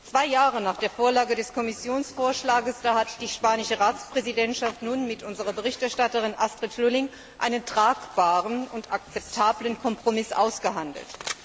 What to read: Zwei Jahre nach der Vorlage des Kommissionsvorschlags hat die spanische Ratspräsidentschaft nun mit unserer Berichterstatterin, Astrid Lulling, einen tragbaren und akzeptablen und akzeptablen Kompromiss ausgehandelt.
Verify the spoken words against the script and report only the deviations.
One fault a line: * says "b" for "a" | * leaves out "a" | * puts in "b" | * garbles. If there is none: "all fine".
* leaves out "und akzeptablen"